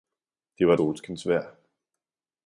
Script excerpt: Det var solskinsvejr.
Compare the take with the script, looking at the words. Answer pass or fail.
pass